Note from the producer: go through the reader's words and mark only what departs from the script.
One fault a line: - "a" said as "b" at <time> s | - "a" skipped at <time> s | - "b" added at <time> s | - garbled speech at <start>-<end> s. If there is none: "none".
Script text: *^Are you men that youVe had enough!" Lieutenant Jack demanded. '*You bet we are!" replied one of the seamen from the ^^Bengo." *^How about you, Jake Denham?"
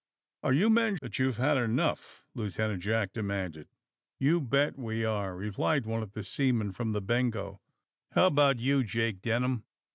none